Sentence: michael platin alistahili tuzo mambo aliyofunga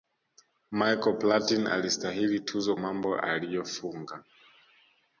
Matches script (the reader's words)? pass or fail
pass